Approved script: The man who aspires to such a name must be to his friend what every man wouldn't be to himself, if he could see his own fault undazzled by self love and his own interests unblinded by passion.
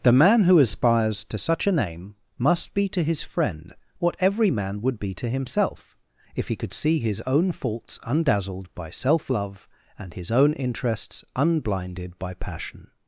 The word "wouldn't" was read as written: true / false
false